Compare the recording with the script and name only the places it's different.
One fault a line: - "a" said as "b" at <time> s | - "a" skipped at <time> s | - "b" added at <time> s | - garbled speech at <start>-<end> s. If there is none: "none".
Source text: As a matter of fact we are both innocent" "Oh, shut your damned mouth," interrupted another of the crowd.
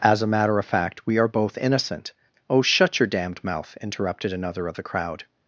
none